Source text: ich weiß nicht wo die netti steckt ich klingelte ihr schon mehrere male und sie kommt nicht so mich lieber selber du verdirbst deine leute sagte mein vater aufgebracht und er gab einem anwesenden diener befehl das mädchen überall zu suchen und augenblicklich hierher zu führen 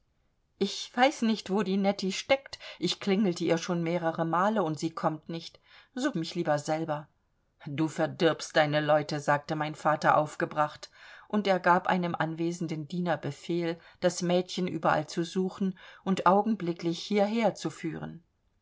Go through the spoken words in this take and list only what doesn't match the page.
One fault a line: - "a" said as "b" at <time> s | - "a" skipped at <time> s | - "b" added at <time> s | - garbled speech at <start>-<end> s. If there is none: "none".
none